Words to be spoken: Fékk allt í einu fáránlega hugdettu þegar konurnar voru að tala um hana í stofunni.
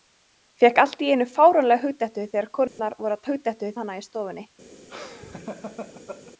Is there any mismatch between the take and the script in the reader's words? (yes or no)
yes